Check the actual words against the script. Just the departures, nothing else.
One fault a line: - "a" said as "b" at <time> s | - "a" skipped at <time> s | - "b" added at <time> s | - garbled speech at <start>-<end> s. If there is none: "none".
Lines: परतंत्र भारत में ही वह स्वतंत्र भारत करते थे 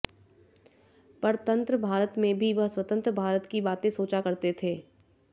- "ही" said as "भी" at 2.4 s
- "की बातें सोचा" added at 3.5 s